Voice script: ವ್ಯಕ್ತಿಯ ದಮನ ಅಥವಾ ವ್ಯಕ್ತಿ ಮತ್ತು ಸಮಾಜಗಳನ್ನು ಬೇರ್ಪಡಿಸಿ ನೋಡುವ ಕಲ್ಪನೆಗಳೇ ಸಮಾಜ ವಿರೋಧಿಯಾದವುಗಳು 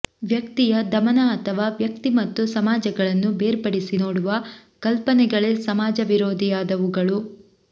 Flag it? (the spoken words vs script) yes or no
no